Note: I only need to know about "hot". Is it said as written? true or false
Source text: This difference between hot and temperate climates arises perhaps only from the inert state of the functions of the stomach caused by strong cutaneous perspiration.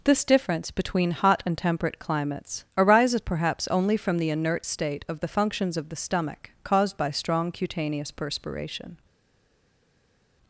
true